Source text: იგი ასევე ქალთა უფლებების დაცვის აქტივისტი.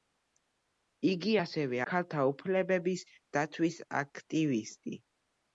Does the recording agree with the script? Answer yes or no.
yes